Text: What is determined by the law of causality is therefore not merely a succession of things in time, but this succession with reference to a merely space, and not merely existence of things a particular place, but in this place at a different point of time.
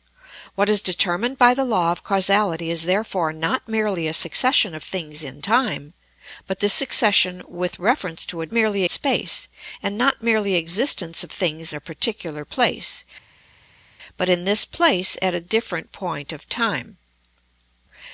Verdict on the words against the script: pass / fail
pass